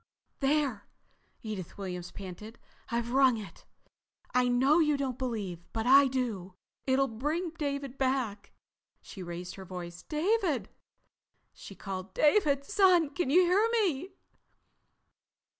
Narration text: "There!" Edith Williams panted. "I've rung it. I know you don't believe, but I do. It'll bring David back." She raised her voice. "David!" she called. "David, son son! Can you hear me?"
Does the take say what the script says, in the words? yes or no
no